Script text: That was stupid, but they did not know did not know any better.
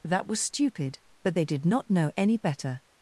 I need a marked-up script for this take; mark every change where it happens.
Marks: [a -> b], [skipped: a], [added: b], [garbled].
That was stupid, but they did not know [skipped: did not know] any better.